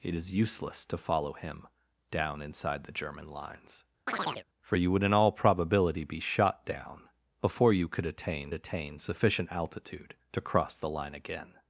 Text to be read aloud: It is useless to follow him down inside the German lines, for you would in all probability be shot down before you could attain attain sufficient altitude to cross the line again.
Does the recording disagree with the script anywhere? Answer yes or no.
no